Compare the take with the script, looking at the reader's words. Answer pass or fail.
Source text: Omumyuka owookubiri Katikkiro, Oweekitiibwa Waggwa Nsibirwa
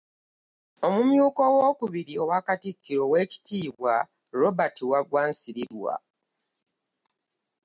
fail